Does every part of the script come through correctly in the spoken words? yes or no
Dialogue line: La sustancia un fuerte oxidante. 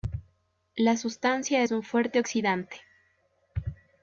no